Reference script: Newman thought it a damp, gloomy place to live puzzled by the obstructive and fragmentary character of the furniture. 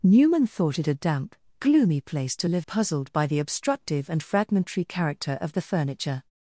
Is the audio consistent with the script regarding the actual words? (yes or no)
yes